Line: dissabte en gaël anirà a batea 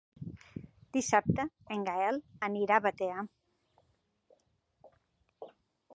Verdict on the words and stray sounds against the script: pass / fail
pass